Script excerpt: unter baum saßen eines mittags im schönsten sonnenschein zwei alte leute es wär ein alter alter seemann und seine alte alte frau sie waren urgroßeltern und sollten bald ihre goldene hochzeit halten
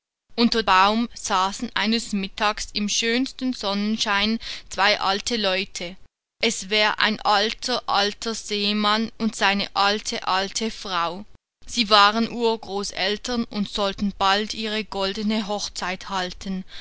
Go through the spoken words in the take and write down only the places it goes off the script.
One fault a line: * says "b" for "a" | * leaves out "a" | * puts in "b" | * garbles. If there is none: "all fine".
all fine